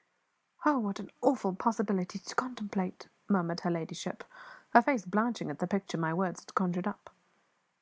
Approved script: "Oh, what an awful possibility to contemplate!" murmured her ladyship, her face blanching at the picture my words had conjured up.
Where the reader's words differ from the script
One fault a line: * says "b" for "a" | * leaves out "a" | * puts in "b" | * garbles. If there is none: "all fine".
all fine